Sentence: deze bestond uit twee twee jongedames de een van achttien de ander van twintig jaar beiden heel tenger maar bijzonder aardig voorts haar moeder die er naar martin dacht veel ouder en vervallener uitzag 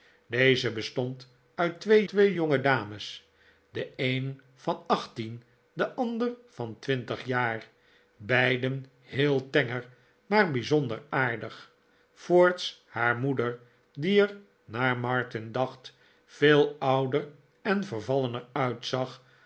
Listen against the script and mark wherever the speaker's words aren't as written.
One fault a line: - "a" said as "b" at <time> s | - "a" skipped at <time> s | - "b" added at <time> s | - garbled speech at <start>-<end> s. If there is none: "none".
none